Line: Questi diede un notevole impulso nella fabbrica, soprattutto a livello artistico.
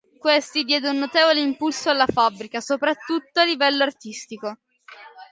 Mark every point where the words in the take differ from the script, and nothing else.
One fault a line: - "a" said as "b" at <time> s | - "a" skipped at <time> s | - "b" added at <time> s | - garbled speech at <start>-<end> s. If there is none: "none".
- "nella" said as "alla" at 1.9 s